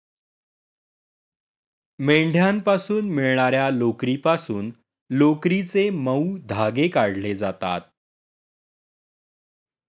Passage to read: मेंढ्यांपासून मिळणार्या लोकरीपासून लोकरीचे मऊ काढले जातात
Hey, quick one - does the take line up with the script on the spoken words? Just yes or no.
no